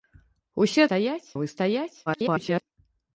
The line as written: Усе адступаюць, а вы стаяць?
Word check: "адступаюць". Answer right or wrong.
wrong